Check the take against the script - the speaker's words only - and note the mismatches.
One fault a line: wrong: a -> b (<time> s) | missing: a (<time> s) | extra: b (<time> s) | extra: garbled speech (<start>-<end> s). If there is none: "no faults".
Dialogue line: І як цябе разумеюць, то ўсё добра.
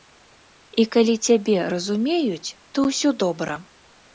wrong: як -> калі (0.9 s)